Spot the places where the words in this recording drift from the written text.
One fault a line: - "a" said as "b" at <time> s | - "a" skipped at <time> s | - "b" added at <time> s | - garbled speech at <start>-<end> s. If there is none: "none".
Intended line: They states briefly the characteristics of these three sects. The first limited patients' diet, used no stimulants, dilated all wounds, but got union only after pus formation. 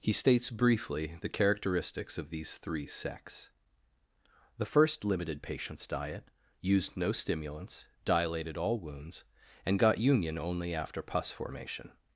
- "They" said as "He" at 0.0 s
- "but" said as "and" at 9.6 s